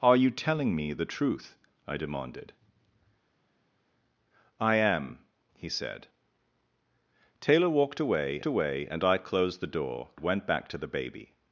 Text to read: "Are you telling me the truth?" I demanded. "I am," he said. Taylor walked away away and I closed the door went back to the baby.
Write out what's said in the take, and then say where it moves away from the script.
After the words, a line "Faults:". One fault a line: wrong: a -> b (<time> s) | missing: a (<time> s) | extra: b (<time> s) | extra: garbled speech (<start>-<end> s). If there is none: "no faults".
"Are you telling me the truth?" I demanded. "I am," he said. Taylor walked away away and I closed the door went back to the baby.
Faults:
no faults